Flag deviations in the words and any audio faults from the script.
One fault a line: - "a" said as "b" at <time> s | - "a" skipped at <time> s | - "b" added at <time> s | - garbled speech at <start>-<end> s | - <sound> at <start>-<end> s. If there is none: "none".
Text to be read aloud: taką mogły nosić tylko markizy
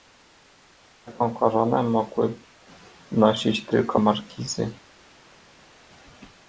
- "koronę" added at 1.3 s